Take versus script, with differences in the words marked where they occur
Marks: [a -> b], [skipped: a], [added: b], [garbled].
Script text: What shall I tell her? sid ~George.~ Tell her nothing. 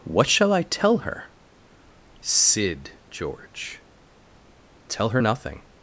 What shall I tell her? sid ~George.~ Tell her nothing.